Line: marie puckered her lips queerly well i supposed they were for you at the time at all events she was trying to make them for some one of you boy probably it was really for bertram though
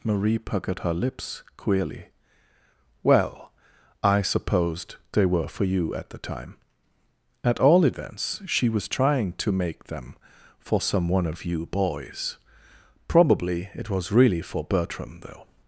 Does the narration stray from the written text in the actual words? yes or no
yes